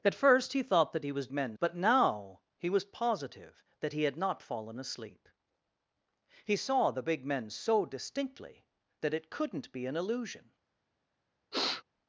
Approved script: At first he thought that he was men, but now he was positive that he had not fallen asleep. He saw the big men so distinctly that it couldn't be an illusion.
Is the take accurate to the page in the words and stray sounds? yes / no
no